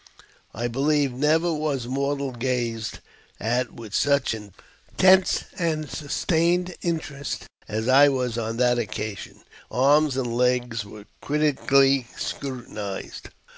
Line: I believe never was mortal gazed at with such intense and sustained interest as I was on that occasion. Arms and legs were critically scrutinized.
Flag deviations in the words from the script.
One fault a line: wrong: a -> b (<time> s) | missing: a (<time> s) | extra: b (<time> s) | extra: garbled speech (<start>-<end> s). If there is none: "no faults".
no faults